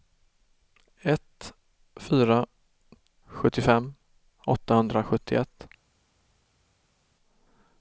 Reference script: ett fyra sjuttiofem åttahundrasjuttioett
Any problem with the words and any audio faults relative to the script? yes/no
no